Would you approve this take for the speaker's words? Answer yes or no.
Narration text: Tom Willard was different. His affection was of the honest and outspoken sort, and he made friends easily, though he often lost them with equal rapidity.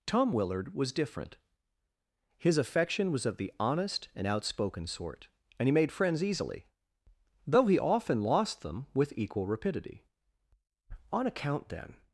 no